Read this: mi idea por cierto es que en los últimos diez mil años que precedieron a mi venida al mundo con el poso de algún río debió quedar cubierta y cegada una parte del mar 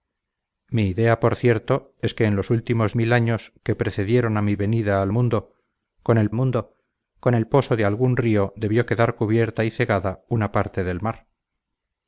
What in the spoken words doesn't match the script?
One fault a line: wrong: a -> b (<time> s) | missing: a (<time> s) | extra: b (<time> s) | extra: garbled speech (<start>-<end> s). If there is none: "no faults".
missing: diez (3.0 s)
extra: mundo con el (6.3 s)